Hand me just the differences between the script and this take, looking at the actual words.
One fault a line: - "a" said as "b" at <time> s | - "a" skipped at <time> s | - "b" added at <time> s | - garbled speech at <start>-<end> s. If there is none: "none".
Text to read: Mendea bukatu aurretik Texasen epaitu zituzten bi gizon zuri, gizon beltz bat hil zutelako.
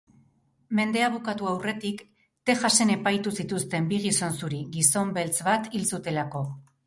none